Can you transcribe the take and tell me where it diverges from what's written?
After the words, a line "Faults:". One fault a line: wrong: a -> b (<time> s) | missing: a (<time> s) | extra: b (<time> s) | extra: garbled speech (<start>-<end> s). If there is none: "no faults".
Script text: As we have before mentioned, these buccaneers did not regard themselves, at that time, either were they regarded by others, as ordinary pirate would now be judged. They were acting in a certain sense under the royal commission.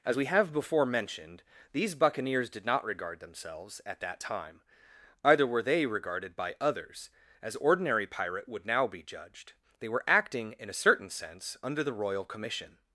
As we have before mentioned, these buccaneers did not regard themselves, at that time, either were they regarded by others, as ordinary pirate would now be judged. They were acting in a certain sense under the royal commission.
Faults:
no faults